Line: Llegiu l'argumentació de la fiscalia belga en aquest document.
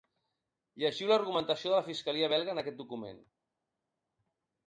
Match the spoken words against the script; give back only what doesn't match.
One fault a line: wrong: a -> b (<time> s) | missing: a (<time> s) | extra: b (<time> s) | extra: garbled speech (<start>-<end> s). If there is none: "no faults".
no faults